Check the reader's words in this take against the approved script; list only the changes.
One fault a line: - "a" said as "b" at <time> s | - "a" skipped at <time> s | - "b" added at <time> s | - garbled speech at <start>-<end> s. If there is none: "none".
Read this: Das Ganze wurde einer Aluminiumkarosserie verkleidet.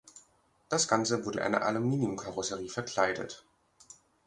none